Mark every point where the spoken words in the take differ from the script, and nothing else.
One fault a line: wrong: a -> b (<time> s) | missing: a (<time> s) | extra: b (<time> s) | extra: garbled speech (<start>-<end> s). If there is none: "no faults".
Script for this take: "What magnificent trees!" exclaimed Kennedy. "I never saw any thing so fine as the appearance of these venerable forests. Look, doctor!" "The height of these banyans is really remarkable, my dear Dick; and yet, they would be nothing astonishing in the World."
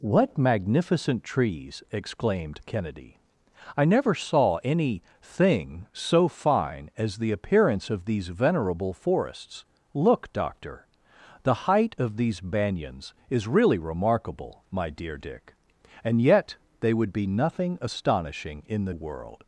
no faults